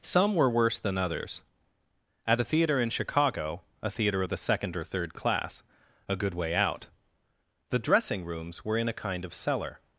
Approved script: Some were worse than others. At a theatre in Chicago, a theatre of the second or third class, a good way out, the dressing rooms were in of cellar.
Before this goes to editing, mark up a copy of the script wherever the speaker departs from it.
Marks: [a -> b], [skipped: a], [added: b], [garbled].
Some were worse than others. At a theatre in Chicago, a theatre of the second or third class, a good way out, the dressing rooms were in [added: a kind] of cellar.